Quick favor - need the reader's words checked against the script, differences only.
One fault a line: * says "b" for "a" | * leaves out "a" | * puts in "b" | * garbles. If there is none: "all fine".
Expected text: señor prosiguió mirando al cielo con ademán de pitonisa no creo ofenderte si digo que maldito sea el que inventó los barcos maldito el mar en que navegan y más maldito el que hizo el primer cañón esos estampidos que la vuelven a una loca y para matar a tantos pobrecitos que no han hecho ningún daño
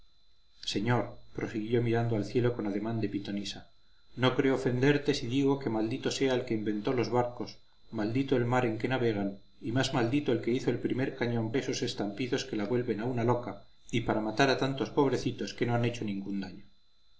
all fine